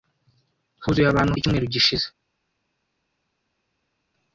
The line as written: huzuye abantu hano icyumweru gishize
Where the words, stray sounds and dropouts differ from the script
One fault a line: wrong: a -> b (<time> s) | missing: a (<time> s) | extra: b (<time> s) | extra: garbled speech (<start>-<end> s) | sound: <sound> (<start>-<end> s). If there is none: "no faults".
missing: hano (1.3 s)